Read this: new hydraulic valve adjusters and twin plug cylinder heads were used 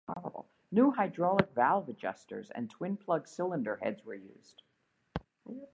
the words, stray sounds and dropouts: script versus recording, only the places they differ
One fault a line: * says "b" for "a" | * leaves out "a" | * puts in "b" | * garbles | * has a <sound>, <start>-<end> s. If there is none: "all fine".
all fine